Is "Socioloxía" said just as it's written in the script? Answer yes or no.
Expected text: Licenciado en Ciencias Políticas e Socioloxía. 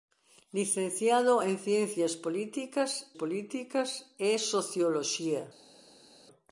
yes